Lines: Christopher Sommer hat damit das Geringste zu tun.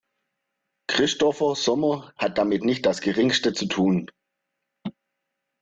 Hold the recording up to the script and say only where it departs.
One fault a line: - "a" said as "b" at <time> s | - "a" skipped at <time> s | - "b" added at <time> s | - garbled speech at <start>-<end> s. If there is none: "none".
- "nicht" added at 2.6 s